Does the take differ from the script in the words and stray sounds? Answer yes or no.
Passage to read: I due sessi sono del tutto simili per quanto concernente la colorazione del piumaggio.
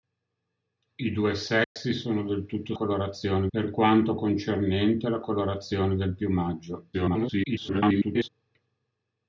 yes